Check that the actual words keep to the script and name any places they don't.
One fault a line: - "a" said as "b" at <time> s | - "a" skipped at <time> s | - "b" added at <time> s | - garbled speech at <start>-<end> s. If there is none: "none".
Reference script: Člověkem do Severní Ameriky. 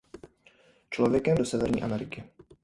none